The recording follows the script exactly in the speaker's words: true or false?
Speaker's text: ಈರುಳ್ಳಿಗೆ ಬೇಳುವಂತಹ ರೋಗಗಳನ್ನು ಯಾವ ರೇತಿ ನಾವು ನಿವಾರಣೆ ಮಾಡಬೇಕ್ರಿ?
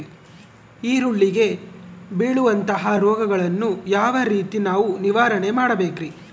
true